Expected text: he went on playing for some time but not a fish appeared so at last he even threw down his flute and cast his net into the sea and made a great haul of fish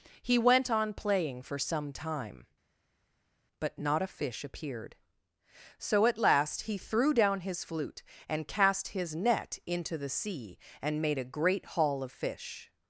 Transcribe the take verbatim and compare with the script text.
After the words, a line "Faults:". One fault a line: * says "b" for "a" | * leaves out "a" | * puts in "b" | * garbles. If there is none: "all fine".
he went on playing for some time but not a fish appeared so at last he threw down his flute and cast his net into the sea and made a great haul of fish
Faults:
* leaves out "even"